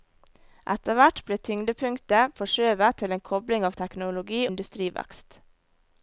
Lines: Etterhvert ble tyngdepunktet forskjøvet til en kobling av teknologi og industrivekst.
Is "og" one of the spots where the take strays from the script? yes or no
yes